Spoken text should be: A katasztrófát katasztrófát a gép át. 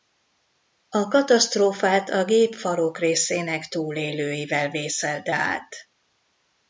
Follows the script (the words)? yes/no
no